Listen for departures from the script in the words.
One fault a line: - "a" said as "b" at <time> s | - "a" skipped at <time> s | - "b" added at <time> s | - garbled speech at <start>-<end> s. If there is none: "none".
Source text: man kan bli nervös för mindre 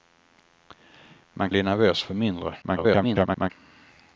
- "kan" skipped at 1.5 s
- garbled speech at 2.6-3.5 s